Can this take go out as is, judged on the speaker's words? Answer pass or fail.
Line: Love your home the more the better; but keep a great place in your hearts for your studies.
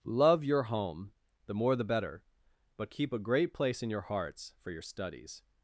pass